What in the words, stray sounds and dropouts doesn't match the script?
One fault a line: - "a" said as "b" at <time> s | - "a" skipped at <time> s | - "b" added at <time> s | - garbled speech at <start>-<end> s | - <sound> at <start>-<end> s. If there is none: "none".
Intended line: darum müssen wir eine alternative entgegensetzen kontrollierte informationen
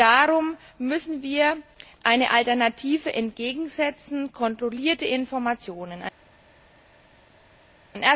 none